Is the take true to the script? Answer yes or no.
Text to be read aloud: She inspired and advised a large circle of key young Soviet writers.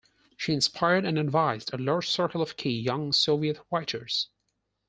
yes